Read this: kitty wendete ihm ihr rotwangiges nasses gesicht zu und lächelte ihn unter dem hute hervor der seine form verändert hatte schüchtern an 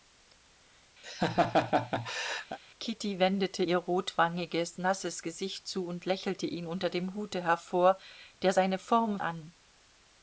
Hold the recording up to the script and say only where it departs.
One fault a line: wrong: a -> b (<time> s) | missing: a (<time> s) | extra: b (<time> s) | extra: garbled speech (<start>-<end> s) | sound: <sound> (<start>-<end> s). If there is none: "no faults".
sound: laugh (1.0-2.6 s)
missing: ihm (3.6 s)
missing: verändert hatte schüchtern (9.2 s)